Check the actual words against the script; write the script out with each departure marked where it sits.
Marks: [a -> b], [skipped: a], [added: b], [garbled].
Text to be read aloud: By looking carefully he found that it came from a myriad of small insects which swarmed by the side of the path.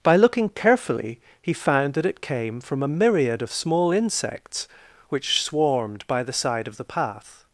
By looking carefully he found that it came from a myriad of small insects which swarmed by the side of the path.